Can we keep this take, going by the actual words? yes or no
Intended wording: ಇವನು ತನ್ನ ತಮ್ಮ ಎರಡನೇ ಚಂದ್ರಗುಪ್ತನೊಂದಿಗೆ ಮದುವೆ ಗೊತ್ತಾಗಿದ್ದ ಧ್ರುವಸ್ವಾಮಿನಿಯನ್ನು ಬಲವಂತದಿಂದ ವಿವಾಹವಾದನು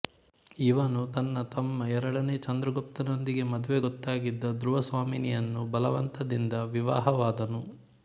yes